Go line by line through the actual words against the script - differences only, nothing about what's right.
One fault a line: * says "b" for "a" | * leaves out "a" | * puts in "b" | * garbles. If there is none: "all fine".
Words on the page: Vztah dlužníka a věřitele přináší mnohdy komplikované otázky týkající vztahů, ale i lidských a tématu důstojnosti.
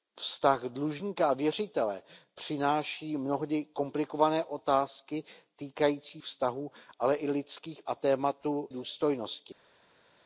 all fine